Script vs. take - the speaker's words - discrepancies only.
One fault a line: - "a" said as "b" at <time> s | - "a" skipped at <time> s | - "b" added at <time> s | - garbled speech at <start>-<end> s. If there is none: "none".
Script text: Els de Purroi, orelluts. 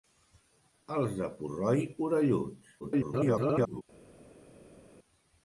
- garbled speech at 2.8-3.8 s